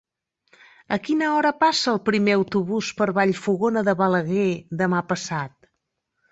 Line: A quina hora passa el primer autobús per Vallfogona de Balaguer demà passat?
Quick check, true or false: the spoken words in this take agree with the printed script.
true